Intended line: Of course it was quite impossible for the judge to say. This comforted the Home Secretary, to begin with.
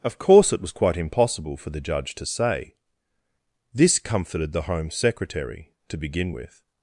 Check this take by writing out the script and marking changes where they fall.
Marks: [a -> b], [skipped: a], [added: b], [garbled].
Of course it was quite impossible for the judge to say. This comforted the Home Secretary, to begin with.